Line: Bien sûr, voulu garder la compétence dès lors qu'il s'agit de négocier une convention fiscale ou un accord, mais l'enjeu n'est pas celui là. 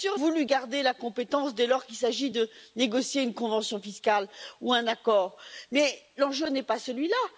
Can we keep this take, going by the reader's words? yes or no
yes